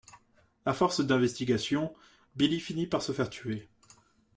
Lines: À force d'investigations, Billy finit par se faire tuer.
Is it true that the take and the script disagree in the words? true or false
false